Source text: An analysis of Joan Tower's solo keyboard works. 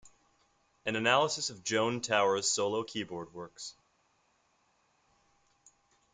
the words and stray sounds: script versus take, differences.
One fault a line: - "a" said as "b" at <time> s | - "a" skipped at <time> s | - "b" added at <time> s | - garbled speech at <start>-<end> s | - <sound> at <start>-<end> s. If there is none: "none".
none